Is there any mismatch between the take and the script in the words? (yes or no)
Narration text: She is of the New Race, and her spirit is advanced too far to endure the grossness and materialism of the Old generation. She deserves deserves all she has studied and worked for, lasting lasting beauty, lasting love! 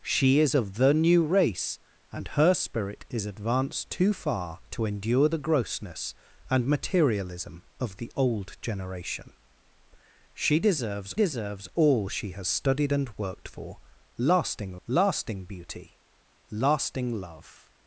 no